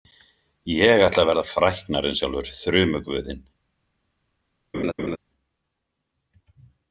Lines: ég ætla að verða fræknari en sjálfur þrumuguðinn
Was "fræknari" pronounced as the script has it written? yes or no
yes